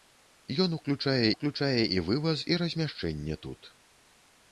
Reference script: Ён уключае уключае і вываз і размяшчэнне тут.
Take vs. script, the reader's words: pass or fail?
pass